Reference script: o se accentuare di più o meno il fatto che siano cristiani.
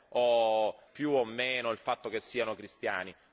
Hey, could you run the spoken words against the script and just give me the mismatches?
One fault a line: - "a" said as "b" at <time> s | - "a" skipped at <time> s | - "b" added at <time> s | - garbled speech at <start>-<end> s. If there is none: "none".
- "se accentuare di" skipped at 0.8 s